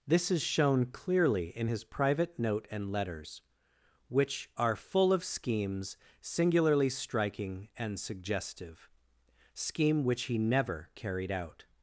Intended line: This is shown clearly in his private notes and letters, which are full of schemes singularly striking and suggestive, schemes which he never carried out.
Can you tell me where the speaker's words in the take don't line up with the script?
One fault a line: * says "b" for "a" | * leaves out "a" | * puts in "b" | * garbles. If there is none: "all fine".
* says "note" for "notes"
* says "scheme" for "schemes"